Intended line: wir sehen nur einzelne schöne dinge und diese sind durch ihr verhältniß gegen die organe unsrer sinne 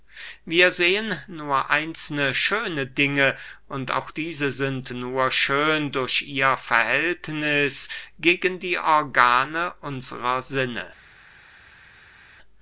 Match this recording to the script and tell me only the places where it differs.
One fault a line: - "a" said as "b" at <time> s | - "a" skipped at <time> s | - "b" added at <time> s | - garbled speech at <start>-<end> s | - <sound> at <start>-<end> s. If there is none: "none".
- "auch" added at 3.9 s
- "nur schön" added at 4.9 s